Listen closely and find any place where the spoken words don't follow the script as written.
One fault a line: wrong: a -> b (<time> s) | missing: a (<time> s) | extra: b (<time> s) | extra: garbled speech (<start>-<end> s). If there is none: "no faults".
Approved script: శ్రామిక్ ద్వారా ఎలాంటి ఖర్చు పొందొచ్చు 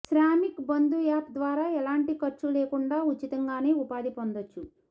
extra: బంధు యాప్ (0.7 s)
extra: లేకుండా ఉచితంగానే ఉపాధి (2.5 s)